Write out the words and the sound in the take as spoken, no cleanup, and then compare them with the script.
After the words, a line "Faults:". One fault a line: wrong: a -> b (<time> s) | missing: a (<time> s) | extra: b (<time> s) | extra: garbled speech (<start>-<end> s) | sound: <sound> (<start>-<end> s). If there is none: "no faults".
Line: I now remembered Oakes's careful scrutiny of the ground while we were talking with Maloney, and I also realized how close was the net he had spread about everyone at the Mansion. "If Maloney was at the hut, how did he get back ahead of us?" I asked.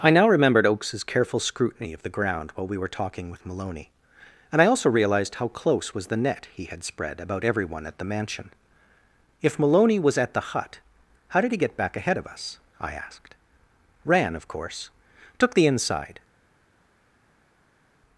I now remembered Oakes's careful scrutiny of the ground while we were talking with Maloney, and I also realized how close was the net he had spread about everyone at the Mansion. "If Maloney was at the hut, how did he get back ahead of us?" I asked. "Ran, of course took the inside
Faults:
extra: Ran of course took the inside (14.1 s)